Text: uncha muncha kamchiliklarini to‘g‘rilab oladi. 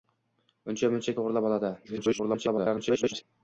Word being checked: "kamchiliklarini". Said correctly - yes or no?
no